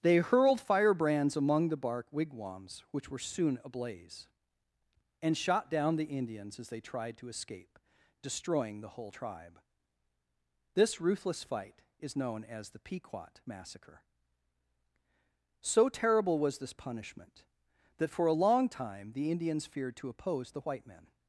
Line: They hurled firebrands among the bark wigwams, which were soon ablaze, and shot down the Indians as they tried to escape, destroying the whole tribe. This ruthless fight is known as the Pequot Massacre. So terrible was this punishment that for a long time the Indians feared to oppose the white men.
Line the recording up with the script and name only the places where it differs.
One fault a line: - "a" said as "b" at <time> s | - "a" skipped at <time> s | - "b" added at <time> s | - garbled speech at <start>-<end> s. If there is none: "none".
none